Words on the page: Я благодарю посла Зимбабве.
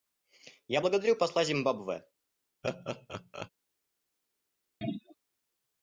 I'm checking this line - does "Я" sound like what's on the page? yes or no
yes